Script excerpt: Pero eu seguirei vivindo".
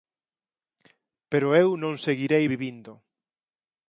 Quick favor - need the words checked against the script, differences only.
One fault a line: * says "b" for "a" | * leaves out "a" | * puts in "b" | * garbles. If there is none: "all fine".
* puts in "non"